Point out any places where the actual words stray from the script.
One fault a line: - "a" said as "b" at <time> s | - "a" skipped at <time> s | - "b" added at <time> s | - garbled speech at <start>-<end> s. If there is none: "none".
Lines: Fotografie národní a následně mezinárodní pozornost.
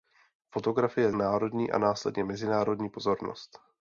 none